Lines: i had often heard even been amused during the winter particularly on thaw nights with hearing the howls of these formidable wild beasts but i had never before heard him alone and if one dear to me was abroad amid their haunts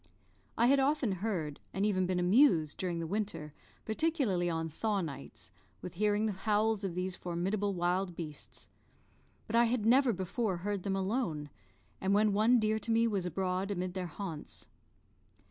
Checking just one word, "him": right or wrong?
wrong